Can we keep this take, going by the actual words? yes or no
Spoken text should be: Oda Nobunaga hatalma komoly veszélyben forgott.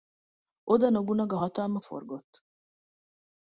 no